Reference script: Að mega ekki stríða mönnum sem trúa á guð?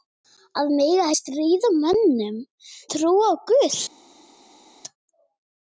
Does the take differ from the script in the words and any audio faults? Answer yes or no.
yes